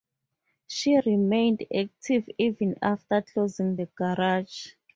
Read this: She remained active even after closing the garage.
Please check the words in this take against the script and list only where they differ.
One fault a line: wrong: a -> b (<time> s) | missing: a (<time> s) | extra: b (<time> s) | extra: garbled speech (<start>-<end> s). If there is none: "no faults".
no faults